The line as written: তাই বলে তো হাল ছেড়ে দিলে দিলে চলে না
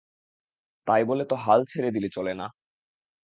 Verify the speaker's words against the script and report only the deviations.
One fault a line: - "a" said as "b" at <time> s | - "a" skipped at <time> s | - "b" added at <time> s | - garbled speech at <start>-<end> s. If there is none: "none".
- "দিলে" skipped at 2.1 s